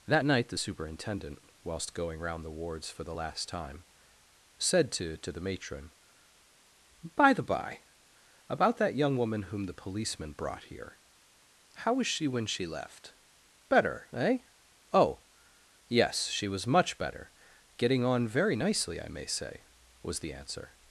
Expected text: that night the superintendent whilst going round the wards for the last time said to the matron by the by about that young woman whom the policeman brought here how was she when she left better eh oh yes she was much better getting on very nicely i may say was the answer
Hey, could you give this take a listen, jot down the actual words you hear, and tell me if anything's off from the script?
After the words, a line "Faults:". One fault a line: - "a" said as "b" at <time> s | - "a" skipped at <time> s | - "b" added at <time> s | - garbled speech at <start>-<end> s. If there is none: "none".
that night the superintendent whilst going round the wards for the last time said to to the matron by the by about that young woman whom the policeman brought here how was she when she left better eh oh yes she was much better getting on very nicely i may say was the answer
Faults:
- "to" added at 5.2 s